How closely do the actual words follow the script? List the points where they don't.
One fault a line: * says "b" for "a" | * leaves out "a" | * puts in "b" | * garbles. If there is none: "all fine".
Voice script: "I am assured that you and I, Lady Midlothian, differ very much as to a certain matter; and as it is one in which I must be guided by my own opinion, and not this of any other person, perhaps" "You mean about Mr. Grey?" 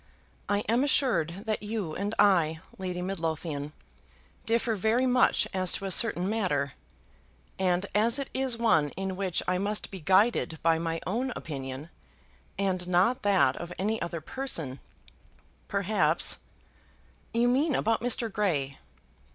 * says "that" for "this"